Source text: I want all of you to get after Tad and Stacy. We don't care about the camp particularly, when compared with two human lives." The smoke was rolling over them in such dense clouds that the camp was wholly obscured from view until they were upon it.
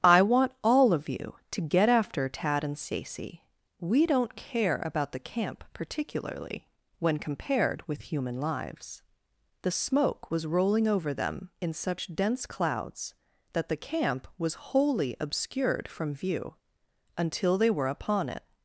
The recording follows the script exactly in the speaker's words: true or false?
false